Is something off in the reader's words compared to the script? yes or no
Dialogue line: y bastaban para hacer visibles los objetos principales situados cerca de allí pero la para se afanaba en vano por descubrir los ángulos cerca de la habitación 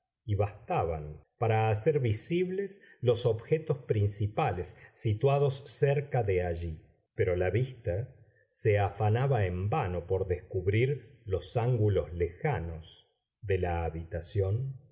yes